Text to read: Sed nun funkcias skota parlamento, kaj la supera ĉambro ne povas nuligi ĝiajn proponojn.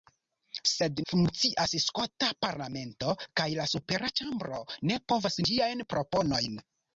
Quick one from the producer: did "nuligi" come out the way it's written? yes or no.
no